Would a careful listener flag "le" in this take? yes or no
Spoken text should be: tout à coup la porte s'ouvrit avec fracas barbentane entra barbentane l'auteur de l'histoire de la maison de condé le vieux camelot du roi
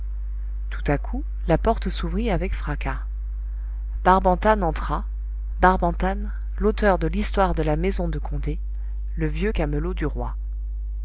no